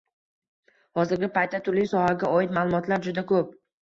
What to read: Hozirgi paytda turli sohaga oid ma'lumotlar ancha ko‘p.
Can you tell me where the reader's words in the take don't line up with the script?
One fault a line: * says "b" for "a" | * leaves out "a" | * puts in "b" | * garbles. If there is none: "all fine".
* says "juda" for "ancha"